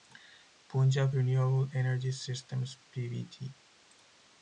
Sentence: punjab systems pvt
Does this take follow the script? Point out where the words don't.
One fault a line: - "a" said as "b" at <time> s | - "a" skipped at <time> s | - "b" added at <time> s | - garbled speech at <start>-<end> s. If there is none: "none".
- "renewable energy" added at 1.1 s